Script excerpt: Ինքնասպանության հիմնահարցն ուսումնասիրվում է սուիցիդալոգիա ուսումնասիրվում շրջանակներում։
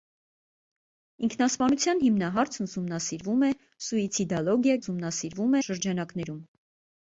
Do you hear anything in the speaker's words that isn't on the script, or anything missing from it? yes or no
no